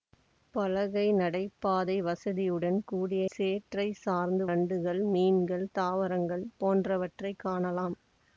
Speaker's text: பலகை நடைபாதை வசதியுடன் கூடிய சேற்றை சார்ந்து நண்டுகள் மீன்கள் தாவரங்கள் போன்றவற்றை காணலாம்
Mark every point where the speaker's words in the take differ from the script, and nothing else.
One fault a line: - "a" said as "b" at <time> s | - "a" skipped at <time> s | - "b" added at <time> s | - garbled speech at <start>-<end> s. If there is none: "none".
none